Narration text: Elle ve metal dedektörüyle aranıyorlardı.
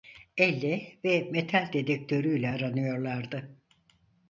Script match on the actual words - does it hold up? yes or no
yes